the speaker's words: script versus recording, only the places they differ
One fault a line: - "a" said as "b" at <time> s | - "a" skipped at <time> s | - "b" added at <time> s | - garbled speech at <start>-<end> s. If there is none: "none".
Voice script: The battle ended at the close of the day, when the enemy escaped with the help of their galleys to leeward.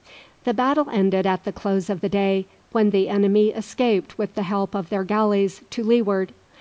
none